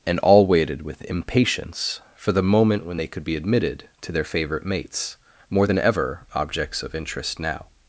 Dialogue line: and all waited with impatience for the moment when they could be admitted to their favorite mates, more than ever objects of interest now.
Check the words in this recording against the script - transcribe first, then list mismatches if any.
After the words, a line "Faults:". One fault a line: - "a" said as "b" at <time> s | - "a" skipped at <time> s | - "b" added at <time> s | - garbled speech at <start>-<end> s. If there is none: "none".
and all waited with impatience for the moment when they could be admitted to their favorite mates, more than ever objects of interest now.
Faults:
none